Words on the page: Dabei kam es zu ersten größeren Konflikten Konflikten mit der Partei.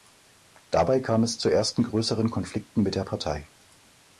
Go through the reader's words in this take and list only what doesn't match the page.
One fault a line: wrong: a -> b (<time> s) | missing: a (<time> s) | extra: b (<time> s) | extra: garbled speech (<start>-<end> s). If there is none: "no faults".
missing: Konflikten (2.8 s)